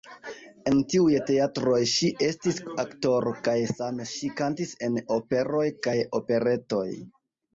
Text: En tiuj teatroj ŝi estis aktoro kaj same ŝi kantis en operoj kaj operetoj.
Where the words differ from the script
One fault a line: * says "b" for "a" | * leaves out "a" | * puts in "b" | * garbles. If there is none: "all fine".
all fine